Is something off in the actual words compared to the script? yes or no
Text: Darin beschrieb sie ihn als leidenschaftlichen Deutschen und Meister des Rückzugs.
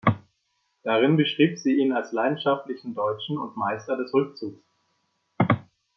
no